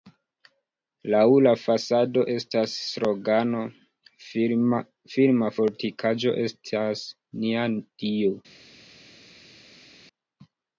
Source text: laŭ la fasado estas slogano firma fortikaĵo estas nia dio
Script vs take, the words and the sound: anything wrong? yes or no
no